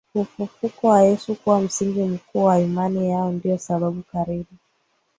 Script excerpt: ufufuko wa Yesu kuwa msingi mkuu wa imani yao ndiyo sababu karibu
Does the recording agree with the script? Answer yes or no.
yes